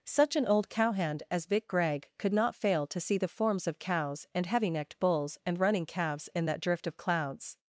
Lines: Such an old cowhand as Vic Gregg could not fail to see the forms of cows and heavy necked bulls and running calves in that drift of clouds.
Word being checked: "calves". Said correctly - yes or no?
yes